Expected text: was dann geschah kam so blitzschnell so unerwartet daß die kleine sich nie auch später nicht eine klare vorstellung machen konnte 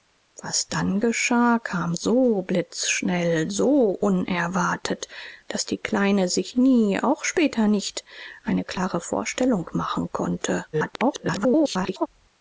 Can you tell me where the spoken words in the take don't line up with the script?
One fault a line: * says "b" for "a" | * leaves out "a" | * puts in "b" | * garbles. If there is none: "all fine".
* garbles